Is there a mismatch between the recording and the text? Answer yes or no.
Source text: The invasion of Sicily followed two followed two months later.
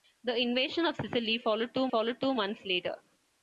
no